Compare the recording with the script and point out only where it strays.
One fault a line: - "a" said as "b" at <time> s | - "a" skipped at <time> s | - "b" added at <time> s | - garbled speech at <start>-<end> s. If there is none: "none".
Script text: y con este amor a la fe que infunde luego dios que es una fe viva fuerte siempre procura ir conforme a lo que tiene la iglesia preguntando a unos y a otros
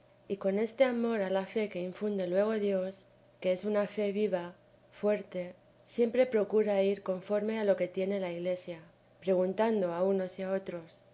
none